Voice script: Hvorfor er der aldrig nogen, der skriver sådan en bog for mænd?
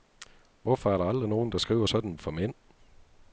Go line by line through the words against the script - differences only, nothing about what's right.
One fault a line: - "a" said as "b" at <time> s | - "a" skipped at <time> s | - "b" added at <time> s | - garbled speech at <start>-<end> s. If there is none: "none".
- "bog" skipped at 2.2 s